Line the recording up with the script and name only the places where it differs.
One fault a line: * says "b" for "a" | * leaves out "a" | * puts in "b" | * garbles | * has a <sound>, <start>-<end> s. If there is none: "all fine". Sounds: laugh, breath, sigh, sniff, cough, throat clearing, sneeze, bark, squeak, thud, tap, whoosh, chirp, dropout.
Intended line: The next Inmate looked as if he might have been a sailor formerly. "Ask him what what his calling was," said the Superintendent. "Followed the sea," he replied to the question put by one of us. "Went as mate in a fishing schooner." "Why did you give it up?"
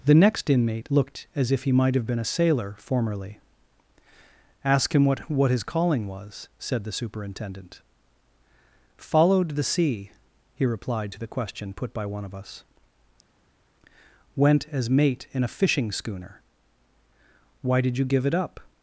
all fine